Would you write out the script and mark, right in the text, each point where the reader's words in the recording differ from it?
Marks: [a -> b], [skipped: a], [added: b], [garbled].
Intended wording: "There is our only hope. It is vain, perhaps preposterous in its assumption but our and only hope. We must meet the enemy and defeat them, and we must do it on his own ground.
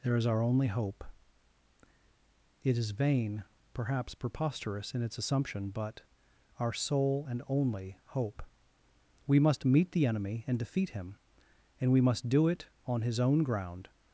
"There is our only hope. It is vain, perhaps preposterous in its assumption but our [added: sole] and only hope. We must meet the enemy and defeat [them, -> him] and we must do it on his own ground.